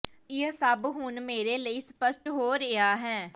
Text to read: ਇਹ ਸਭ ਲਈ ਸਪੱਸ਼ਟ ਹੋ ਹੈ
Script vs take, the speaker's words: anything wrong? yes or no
yes